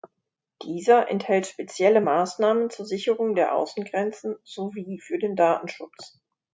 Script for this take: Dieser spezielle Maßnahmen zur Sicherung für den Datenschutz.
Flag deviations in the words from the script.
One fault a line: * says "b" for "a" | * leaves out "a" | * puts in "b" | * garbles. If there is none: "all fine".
* puts in "enthält"
* puts in "der Außengrenzen sowie"